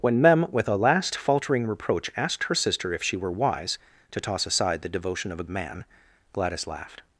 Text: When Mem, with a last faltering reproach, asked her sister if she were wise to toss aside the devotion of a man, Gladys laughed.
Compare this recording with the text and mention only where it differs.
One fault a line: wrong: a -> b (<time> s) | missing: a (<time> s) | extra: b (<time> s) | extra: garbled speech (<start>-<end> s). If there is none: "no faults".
no faults